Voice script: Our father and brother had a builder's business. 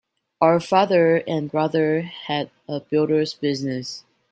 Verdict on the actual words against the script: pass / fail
pass